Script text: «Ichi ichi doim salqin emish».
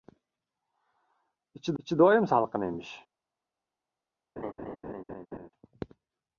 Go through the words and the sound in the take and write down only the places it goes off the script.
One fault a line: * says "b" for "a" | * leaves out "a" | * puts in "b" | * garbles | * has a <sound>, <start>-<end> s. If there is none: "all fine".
* has a laugh, 4.4-5.5 s